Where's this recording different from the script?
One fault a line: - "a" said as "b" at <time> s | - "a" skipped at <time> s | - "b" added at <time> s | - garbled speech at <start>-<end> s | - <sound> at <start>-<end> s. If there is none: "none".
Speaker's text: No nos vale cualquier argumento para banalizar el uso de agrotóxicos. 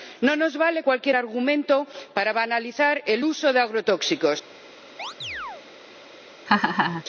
- chirp at 5.0-5.6 s
- laugh at 6.5-7.0 s